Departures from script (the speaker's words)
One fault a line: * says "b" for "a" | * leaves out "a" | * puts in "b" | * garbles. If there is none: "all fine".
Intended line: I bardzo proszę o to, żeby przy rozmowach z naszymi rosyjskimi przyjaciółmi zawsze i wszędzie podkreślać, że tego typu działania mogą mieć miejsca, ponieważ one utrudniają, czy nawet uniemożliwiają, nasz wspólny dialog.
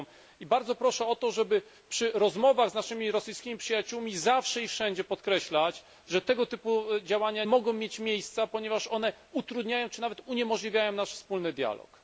all fine